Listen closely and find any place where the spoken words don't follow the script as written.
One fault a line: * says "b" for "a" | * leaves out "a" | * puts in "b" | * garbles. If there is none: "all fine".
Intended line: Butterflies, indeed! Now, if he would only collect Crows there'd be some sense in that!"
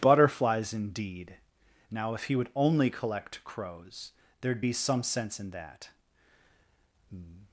all fine